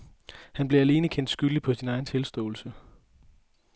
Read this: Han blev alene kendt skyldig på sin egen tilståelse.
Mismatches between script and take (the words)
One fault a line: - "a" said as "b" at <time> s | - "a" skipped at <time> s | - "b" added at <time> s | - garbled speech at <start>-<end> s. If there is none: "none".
none